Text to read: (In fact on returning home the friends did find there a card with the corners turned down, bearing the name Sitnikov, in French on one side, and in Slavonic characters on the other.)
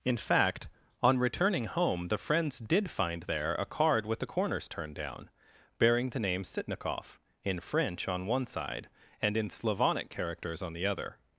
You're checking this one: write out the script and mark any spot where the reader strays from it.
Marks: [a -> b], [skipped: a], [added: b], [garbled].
(In fact on returning home the friends did find there a card with the corners turned down, bearing the name Sitnikov, in French on one side, and in Slavonic characters on the other.)